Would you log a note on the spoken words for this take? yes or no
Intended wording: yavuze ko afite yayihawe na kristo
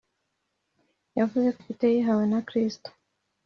no